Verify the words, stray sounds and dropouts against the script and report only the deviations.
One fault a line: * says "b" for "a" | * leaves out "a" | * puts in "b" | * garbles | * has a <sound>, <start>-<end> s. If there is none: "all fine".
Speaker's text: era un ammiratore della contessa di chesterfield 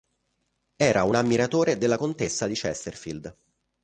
all fine